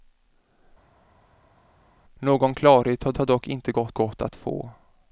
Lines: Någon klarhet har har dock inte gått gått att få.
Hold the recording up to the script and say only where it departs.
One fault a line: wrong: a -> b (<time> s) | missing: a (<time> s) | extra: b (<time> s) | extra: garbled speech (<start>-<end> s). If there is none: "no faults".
no faults